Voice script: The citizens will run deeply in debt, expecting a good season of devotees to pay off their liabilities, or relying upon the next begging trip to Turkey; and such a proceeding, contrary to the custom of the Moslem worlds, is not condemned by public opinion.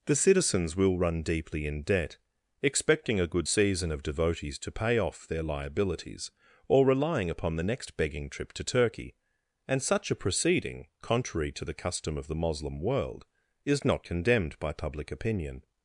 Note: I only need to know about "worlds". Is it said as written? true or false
false